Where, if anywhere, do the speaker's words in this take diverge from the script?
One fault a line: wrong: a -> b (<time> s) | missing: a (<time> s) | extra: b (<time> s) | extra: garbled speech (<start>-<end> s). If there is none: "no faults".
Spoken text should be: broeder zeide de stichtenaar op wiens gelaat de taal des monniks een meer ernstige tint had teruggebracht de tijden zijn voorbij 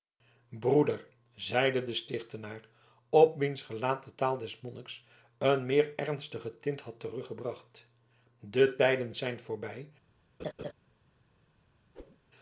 no faults